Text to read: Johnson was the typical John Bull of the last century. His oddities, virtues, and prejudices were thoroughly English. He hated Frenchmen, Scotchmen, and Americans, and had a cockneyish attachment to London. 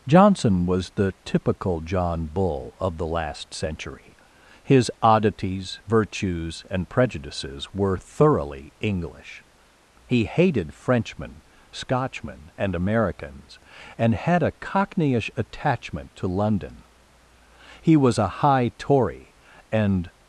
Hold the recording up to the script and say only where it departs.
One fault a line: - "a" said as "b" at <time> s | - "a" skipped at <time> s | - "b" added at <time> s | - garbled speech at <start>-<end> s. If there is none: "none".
- "He was a high Tory and" added at 17.8 s